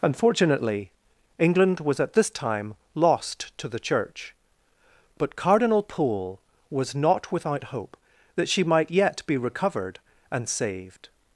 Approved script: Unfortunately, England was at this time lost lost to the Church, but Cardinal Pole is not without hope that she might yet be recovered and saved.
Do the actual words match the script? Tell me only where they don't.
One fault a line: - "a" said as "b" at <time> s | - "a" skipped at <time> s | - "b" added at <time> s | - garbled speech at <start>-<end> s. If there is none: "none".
- "lost" skipped at 3.5 s
- "is" said as "was" at 6.7 s